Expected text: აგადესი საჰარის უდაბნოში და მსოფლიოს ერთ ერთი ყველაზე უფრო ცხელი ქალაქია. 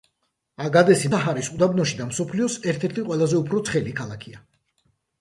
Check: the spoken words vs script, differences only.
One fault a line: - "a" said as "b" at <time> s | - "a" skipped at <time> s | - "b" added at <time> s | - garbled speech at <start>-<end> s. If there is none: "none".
none